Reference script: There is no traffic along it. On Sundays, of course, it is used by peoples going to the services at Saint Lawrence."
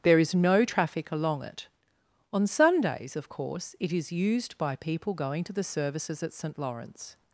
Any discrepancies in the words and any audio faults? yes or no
yes